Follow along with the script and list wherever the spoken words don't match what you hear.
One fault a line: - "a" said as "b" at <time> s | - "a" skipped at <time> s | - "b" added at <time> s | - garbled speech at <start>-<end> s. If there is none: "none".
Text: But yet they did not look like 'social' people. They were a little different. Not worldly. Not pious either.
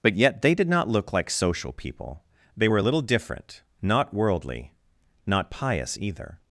none